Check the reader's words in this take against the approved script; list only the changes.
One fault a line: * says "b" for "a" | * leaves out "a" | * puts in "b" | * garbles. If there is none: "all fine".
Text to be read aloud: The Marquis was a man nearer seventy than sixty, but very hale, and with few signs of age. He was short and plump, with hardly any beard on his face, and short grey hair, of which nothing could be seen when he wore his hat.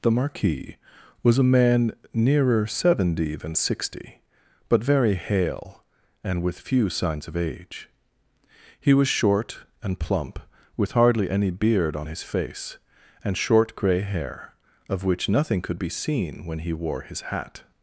all fine